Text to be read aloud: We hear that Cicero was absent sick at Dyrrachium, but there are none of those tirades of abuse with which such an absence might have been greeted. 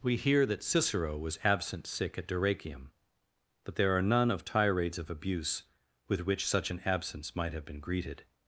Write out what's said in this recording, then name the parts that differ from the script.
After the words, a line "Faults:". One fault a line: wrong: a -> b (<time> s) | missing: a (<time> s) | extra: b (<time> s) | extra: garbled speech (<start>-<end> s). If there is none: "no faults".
We hear that Cicero was absent sick at Dyrrachium, but there are none of tirades of abuse with which such an absence might have been greeted.
Faults:
missing: those (4.5 s)